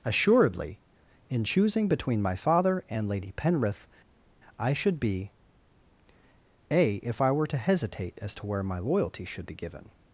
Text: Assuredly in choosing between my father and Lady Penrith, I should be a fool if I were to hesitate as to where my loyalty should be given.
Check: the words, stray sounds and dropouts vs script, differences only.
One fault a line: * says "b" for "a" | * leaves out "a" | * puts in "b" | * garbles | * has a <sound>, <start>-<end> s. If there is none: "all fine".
* leaves out "fool"